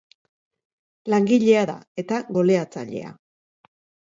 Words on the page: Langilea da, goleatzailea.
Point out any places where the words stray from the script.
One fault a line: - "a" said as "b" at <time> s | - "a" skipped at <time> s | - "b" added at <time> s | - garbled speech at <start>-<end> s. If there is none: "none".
- "eta" added at 2.1 s